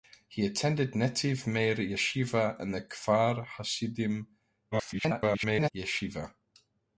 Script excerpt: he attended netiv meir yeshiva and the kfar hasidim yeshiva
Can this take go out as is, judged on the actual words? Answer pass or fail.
fail